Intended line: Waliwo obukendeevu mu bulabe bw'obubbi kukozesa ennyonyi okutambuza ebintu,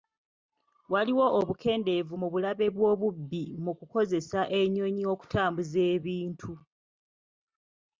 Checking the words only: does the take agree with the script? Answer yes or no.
no